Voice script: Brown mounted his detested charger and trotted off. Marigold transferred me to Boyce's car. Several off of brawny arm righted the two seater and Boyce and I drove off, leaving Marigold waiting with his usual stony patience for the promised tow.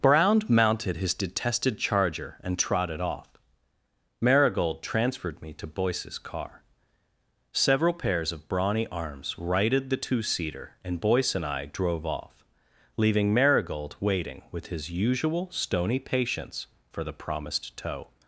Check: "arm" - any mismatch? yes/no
yes